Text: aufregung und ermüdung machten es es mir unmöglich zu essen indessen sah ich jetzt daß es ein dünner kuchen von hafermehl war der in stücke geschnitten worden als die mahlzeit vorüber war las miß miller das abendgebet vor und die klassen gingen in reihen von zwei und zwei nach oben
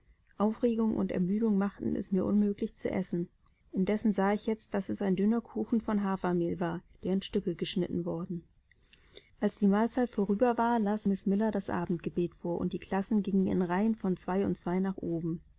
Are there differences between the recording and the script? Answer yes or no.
yes